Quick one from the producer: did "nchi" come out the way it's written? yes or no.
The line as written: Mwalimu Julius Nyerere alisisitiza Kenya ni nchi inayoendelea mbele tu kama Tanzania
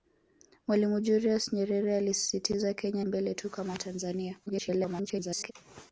no